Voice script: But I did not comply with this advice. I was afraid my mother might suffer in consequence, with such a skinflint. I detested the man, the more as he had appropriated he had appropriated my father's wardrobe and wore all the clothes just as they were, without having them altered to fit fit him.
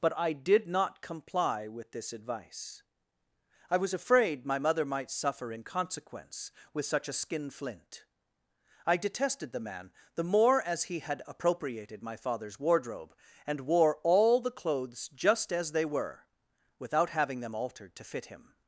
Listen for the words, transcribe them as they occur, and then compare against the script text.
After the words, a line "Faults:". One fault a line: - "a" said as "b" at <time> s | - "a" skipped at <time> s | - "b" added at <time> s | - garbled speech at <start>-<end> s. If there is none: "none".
But I did not comply with this advice. I was afraid my mother might suffer in consequence, with such a skinflint. I detested the man, the more as he had appropriated my father's wardrobe and wore all the clothes just as they were, without having them altered to fit him.
Faults:
- "he had appropriated" skipped at 12.0 s
- "fit" skipped at 18.3 s